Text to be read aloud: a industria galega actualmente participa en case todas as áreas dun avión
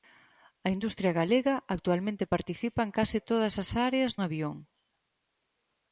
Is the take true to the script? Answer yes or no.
no